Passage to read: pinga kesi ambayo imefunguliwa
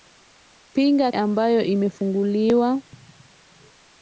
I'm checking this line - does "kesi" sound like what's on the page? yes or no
no